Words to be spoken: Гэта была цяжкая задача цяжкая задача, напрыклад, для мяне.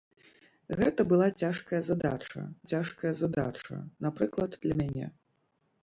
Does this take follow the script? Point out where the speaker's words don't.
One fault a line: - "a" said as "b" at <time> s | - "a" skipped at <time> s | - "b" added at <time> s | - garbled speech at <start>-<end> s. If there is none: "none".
none